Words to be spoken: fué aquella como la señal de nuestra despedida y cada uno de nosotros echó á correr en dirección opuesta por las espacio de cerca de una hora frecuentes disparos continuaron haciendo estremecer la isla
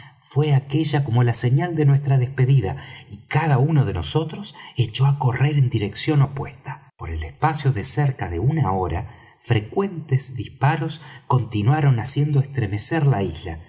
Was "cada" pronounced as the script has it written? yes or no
yes